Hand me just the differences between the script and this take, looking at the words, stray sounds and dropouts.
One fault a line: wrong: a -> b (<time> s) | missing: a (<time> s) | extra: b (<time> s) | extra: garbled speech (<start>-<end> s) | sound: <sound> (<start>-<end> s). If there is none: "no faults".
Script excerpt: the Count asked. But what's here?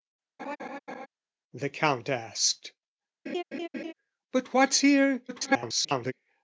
sound: laugh (0.4-1.1 s)
sound: laugh (3.3-3.9 s)
extra: garbled speech (5.3-6.1 s)